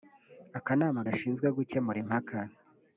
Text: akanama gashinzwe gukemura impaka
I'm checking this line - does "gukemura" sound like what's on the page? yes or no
yes